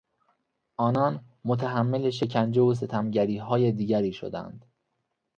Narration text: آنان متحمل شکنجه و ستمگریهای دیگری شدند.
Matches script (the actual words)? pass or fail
pass